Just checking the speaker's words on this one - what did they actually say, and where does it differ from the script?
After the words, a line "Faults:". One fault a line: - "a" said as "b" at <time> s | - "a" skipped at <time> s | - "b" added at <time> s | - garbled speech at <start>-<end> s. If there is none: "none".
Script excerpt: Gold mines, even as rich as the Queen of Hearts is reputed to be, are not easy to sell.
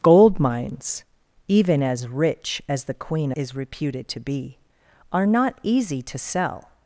Gold mines, even as rich as the Queen is reputed to be, are not easy to sell.
Faults:
- "of Hearts" skipped at 3.3 s